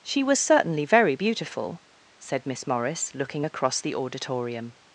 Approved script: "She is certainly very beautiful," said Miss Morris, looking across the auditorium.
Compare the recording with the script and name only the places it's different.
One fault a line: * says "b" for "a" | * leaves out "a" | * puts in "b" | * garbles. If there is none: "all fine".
* says "was" for "is"